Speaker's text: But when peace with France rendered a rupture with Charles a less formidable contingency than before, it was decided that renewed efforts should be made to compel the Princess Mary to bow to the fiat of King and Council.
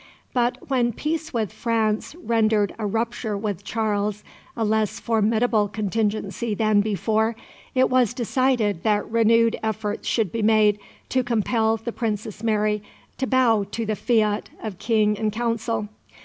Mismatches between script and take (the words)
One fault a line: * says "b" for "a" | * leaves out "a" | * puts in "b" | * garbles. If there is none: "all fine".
all fine